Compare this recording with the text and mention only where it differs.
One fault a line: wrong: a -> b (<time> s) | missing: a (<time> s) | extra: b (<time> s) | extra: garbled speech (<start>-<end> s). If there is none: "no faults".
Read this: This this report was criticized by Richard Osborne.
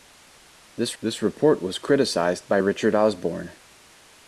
no faults